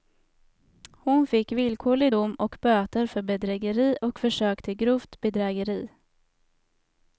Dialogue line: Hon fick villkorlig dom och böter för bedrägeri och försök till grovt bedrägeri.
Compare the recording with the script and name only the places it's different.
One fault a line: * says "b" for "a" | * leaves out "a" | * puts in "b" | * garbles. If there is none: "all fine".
all fine